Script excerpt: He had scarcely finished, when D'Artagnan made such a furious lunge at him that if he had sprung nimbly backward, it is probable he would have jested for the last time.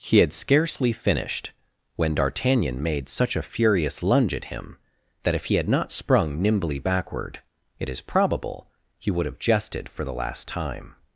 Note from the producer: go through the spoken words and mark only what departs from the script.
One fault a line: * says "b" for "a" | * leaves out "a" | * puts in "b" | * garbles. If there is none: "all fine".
* puts in "not"